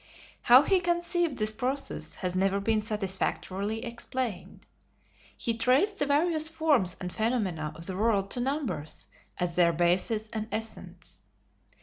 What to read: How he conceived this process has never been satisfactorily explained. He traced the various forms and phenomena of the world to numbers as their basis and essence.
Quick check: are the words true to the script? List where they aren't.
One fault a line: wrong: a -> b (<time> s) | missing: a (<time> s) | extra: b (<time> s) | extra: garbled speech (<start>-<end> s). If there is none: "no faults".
no faults